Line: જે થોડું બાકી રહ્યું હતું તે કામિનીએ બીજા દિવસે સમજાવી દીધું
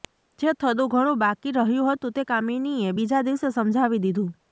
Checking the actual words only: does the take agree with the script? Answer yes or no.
no